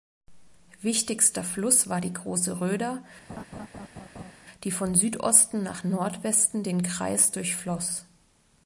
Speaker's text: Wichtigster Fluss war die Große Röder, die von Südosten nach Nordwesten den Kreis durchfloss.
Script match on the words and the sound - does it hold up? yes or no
no